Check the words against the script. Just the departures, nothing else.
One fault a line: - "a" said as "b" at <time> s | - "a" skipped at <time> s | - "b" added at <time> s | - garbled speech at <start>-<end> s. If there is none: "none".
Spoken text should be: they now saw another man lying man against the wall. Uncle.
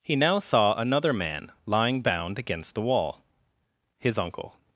- "they" said as "he" at 0.0 s
- "man" said as "bound" at 2.0 s
- "His" added at 4.0 s